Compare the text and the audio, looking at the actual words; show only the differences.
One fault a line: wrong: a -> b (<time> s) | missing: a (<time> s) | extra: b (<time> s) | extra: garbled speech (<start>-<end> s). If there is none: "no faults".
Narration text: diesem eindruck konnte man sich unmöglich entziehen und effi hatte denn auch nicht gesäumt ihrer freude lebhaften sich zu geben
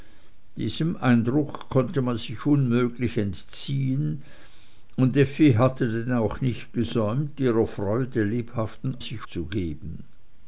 no faults